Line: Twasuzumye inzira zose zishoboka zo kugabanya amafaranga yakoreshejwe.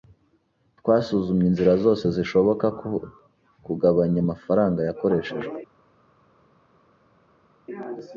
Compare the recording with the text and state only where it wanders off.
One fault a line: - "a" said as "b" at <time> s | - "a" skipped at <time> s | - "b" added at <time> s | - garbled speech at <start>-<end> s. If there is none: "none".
none